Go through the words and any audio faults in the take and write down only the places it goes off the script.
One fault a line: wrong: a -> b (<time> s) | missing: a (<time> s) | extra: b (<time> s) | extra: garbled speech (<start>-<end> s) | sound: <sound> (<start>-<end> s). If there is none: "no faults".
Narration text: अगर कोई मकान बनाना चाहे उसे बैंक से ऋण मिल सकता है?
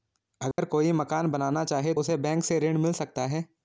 sound: dropout (0.5-0.6 s)